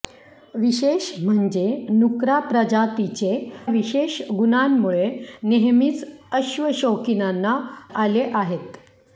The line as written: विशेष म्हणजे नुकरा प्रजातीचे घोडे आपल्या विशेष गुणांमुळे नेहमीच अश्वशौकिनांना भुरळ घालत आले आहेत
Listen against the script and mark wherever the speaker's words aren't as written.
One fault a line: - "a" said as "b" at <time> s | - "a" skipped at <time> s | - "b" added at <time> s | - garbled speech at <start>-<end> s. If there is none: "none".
- "घोडे आपल्या" skipped at 3.3 s
- "भुरळ घालत" skipped at 7.6 s